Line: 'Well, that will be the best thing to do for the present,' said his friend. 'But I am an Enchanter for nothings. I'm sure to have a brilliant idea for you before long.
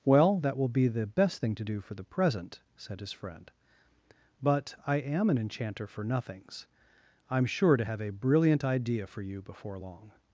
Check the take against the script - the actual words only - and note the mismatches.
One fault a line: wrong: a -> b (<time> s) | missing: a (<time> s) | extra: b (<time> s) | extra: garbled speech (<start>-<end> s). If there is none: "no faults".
no faults